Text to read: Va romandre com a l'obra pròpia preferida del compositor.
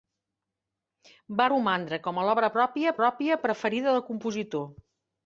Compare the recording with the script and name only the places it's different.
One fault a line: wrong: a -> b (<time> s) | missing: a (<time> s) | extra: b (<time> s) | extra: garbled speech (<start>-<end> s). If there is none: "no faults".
extra: pròpia (3.0 s)